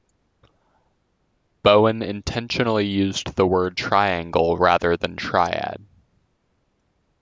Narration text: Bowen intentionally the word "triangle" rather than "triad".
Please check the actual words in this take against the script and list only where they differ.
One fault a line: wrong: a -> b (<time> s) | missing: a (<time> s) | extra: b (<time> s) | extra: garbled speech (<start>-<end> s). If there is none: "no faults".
extra: used (2.9 s)